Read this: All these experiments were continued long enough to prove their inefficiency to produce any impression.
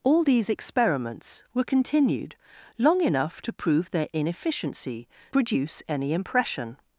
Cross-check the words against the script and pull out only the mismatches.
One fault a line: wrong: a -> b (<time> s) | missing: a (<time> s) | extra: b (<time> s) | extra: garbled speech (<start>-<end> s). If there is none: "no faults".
missing: to (5.1 s)